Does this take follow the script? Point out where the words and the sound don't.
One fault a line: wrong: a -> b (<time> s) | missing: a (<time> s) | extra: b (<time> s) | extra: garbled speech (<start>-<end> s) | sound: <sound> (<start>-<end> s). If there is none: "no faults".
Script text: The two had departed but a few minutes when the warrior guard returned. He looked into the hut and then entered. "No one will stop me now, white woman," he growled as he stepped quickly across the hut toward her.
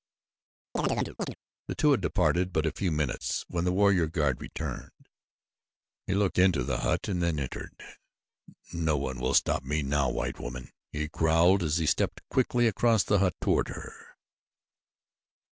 sound: chirp (0.8-1.4 s)